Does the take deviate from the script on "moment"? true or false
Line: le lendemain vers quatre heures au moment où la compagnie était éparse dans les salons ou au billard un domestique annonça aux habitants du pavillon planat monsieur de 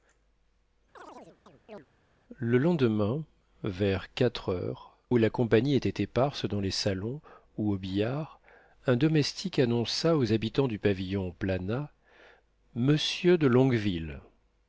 true